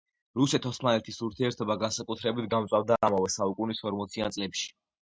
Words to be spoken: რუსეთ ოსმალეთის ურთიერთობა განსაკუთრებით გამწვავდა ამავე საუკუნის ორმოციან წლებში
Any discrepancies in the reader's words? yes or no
no